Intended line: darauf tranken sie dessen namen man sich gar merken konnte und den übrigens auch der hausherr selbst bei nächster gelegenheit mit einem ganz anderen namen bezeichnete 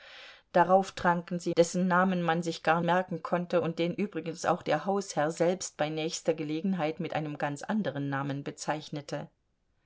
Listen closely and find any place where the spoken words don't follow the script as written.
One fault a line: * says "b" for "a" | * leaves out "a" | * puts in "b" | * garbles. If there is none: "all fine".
all fine